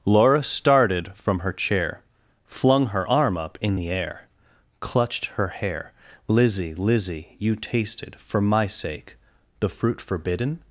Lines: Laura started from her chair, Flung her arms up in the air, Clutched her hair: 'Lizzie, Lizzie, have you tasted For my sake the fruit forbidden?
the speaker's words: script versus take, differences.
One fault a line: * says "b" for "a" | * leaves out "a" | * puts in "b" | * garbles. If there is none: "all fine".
* says "arm" for "arms"
* leaves out "have"